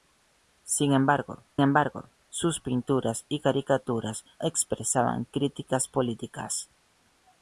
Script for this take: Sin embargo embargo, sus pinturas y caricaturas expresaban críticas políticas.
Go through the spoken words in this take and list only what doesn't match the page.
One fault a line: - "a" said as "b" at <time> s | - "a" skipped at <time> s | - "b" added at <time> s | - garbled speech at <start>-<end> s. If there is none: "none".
none